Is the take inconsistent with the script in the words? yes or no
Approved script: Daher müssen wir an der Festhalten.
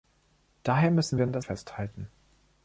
no